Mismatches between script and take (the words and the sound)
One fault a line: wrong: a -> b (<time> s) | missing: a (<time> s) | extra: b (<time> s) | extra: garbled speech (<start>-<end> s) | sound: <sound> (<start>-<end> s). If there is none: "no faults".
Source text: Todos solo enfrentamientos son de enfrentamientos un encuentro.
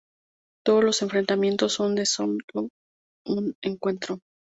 wrong: solo -> los (0.8 s)
wrong: enfrentamientos -> solo (2.1 s)